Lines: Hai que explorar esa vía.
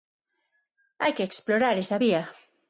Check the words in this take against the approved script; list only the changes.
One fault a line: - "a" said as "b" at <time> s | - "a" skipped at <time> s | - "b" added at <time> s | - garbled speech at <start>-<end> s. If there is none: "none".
none